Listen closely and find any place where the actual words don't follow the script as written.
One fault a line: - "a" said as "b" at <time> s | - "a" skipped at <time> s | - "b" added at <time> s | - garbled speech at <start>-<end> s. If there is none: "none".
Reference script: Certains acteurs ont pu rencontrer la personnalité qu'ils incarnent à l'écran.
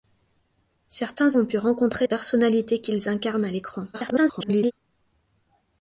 - "acteurs" skipped at 1.4 s
- "la" skipped at 2.1 s
- garbled speech at 3.9-4.7 s